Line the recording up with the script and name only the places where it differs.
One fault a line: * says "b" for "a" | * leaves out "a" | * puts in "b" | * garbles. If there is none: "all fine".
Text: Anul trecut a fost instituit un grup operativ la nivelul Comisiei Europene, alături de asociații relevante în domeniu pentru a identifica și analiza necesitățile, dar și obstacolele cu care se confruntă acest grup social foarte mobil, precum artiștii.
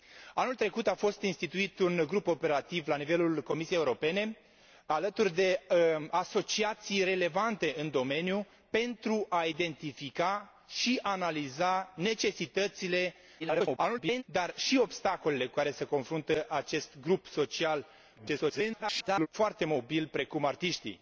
* garbles
* garbles